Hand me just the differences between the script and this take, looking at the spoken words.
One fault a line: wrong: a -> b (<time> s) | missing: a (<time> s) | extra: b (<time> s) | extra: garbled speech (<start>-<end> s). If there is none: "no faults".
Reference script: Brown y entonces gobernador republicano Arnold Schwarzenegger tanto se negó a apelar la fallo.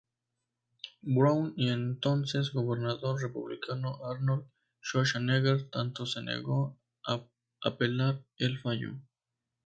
wrong: la -> el (8.4 s)